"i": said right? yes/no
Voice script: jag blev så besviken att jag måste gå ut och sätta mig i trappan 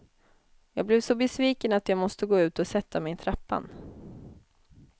yes